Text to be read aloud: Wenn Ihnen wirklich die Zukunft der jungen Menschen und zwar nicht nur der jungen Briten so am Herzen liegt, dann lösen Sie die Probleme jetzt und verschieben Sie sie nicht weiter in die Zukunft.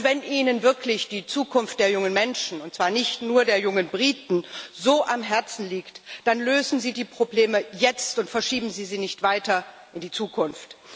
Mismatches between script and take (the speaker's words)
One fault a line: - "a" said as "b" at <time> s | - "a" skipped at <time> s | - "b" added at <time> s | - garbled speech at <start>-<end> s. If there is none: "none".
none